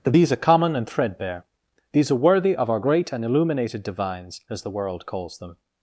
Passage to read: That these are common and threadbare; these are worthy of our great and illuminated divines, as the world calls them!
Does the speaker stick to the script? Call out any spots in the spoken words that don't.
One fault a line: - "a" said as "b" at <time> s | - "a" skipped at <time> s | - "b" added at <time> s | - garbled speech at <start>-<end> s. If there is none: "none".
none